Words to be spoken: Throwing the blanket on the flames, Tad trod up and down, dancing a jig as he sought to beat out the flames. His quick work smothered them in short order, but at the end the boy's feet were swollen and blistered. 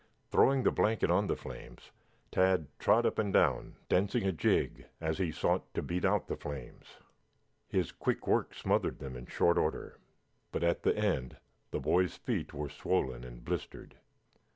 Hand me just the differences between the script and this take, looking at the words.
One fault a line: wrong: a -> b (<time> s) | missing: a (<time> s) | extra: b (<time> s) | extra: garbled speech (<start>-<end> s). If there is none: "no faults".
no faults